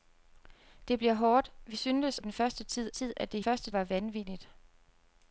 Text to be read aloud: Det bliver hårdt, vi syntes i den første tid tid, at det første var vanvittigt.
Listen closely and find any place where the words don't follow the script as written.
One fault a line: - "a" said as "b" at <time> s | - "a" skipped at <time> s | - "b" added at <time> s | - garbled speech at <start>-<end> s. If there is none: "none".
none